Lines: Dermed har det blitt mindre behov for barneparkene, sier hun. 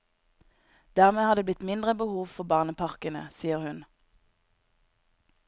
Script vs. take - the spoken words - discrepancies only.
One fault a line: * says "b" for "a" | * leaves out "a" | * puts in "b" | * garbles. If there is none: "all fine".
all fine